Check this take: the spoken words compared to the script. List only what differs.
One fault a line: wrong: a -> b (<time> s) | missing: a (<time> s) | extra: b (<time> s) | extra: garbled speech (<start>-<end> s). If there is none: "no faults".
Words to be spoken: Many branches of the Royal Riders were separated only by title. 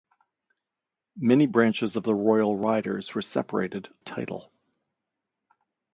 missing: only by (3.9 s)